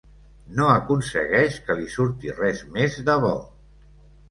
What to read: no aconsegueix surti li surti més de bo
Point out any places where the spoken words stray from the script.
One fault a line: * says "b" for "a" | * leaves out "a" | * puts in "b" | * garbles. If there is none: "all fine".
* says "que" for "surti"
* puts in "res"